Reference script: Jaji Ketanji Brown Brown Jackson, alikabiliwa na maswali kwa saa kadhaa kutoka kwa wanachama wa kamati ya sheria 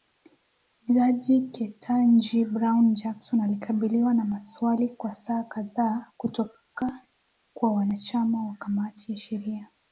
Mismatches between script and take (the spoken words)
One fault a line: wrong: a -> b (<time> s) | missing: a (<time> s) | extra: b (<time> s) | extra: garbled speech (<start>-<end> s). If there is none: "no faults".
missing: Brown (2.9 s)